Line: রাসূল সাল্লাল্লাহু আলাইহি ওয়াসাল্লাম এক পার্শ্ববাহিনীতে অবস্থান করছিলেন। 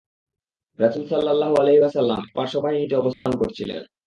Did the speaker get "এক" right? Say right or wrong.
wrong